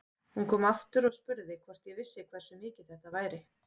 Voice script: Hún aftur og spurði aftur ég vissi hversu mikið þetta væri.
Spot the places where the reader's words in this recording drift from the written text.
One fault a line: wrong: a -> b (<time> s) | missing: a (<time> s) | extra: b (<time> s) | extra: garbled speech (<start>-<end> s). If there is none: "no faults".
extra: kom (0.5 s)
wrong: aftur -> hvort (1.7 s)